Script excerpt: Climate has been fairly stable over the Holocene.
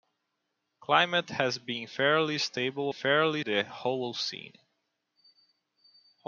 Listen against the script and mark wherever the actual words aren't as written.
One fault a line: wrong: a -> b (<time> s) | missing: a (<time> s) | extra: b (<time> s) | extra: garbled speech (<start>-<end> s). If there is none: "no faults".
wrong: over -> fairly (2.9 s)